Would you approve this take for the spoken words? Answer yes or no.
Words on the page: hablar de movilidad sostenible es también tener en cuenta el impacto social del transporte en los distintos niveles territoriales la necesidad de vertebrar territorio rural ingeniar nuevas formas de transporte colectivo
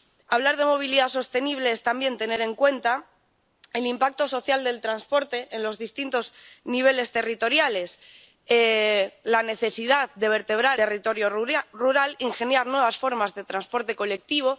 yes